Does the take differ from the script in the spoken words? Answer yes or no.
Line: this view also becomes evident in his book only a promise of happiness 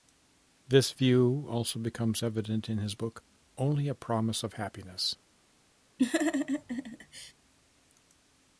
no